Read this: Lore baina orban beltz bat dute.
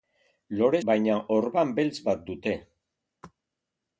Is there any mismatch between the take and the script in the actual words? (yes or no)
no